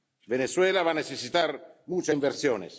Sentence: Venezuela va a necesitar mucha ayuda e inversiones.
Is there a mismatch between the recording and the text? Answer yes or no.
yes